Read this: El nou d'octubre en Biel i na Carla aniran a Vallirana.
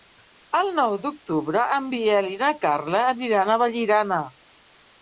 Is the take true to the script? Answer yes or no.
yes